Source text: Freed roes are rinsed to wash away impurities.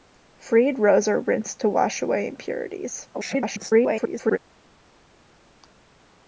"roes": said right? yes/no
yes